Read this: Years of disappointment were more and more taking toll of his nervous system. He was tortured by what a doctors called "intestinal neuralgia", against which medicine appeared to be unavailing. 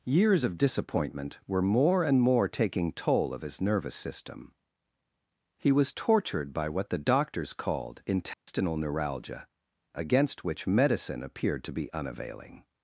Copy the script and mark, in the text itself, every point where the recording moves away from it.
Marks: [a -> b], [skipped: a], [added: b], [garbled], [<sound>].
Years of disappointment were more and more taking toll of his nervous system. He was tortured by what [a -> the] doctors called "intestinal [dropout] neuralgia", against which medicine appeared to be unavailing.